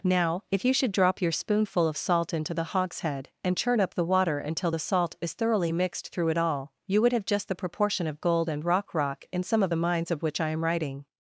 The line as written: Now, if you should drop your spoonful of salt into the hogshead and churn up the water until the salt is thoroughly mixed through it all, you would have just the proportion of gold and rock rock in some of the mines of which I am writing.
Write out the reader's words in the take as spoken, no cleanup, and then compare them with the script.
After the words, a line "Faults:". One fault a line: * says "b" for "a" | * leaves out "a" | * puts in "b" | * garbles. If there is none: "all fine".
Now, if you should drop your spoonful of salt into the hogshead and churn up the water until the salt is thoroughly mixed through it all, you would have just the proportion of gold and rock rock in some of the mines of which I am writing.
Faults:
all fine